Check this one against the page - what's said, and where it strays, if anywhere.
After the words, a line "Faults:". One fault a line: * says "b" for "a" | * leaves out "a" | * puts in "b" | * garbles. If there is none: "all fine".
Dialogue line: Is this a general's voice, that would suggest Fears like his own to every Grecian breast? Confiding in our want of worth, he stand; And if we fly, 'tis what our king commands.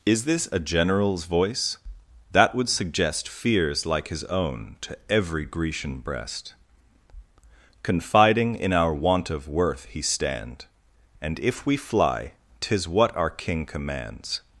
Is this a general's voice, that would suggest Fears like his own to every Grecian breast? Confiding in our want of worth, he stand; And if we fly, 'tis what our king commands.
Faults:
all fine